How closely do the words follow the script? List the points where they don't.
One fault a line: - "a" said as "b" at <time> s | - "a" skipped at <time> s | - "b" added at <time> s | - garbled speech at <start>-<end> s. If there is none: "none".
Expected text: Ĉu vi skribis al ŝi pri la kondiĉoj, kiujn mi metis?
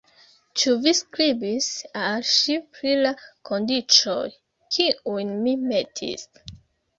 none